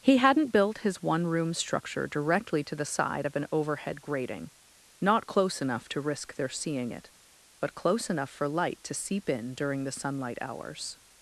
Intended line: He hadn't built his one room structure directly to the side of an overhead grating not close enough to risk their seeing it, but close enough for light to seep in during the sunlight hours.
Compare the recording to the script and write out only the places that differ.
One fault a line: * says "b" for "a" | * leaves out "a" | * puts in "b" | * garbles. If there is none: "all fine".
all fine